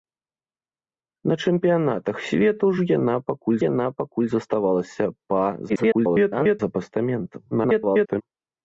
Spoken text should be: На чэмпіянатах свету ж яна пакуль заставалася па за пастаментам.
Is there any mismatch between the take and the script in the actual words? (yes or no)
yes